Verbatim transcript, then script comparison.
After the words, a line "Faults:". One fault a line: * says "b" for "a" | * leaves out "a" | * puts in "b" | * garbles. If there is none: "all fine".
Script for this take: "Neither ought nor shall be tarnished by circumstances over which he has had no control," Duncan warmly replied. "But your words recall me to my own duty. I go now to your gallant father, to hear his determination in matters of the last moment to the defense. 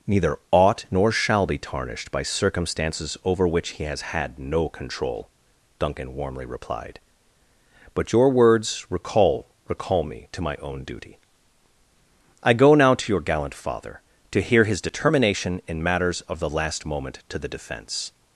"Neither ought nor shall be tarnished by circumstances over which he has had no control," Duncan warmly replied. "But your words recall recall me to my own duty. I go now to your gallant father, to hear his determination in matters of the last moment to the defense.
Faults:
* puts in "recall"